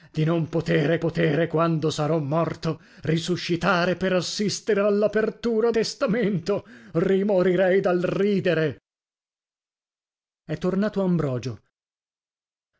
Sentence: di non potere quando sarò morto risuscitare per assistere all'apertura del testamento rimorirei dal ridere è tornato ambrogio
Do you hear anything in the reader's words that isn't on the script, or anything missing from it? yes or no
yes